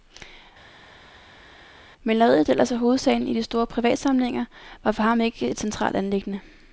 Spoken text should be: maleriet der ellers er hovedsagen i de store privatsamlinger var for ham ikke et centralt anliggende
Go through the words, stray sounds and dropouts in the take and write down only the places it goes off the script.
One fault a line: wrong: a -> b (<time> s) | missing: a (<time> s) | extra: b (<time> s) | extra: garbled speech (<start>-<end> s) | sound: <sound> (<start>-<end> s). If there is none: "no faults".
no faults